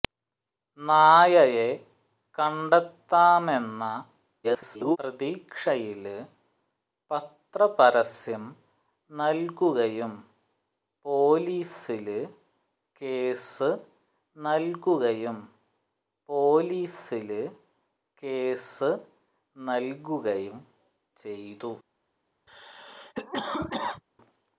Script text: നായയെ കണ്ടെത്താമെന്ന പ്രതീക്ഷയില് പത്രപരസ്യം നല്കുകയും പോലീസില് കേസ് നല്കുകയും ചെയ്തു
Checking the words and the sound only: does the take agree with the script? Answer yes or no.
no